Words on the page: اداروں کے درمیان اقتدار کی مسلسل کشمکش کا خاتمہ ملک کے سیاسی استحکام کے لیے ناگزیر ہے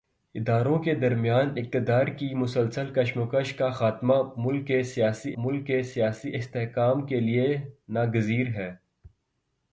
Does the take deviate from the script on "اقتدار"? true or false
false